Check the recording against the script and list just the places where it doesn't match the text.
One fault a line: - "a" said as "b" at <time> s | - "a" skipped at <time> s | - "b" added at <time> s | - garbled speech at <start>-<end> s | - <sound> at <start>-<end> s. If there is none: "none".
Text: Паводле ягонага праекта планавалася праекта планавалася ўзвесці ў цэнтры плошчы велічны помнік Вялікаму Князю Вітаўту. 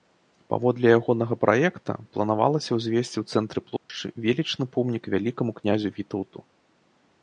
- "праекта планавалася" skipped at 2.7 s
- dropout at 3.8-3.9 s